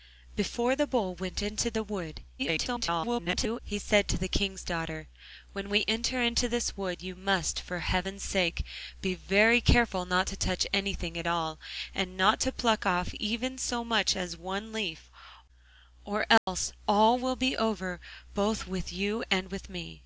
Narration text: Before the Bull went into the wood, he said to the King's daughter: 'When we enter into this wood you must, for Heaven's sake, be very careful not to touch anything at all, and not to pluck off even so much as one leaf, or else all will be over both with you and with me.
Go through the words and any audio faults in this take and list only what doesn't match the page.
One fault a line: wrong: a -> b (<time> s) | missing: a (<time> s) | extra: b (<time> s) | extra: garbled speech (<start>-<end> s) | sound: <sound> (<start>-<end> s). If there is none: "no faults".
extra: garbled speech (2.4-3.6 s)
sound: dropout (16.4-16.5 s)